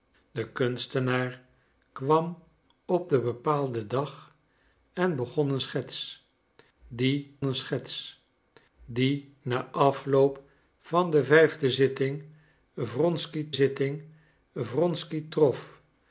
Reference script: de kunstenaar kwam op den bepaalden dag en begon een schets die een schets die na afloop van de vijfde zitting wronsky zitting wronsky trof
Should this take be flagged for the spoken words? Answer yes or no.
no